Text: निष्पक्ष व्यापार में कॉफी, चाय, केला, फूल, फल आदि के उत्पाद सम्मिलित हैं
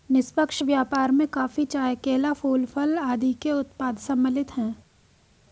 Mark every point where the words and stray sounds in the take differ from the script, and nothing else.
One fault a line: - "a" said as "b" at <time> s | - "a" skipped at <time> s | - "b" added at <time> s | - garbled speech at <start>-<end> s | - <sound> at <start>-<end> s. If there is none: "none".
none